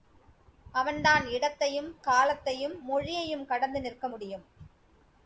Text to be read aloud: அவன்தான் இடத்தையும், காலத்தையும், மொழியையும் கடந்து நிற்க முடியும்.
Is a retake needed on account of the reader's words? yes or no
no